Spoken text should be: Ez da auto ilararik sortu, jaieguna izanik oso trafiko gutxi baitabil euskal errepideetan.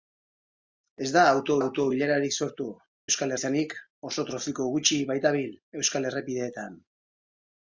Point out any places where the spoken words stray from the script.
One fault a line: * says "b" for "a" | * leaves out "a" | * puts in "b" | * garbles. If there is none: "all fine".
* puts in "auto"
* says "euskal" for "jaieguna"